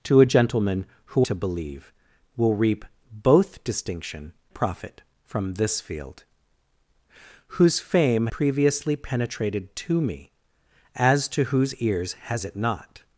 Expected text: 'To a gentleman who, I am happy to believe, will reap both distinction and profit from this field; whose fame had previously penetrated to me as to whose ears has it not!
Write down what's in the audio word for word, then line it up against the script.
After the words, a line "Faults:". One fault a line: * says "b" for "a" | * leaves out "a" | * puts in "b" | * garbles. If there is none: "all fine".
'To a gentleman who, to believe, will reap both distinction profit from this field; whose fame previously penetrated to me as to whose ears has it not!
Faults:
* leaves out "I am happy"
* leaves out "and"
* leaves out "had"